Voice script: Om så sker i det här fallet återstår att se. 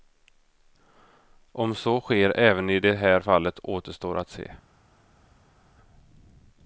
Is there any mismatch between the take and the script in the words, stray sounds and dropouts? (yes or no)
yes